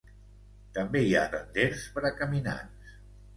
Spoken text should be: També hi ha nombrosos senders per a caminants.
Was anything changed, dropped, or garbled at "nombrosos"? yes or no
yes